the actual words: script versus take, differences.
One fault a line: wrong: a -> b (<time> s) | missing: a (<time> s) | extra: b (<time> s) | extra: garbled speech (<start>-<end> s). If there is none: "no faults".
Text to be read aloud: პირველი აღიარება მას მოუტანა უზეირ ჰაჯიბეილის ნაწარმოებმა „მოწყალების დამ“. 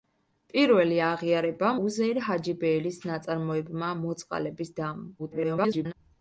missing: მას მოუტანა (1.7 s)
extra: garbled speech (5.2-5.9 s)